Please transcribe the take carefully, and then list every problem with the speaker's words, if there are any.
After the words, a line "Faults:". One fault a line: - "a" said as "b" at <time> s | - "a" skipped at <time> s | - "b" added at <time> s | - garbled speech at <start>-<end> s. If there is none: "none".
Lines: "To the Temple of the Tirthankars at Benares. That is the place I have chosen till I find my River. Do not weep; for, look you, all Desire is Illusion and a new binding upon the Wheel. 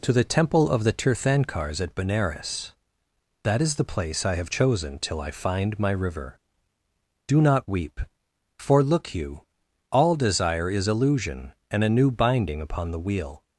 "To the Temple of the Tirthankars at Benares. That is the place I have chosen till I find my River. Do not weep; for, look you, all Desire is Illusion and a new binding upon the Wheel.
Faults:
none